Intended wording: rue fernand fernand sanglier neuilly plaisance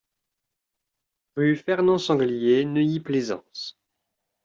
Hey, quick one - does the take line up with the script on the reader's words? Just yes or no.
no